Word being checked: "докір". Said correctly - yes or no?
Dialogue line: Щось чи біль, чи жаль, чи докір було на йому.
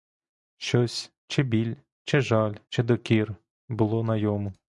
yes